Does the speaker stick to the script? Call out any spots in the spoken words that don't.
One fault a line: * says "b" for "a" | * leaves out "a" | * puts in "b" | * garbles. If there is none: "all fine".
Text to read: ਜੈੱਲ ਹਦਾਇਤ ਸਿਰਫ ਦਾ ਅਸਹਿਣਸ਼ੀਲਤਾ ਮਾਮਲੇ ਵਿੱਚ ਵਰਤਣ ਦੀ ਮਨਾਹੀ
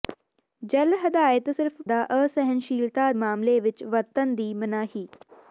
all fine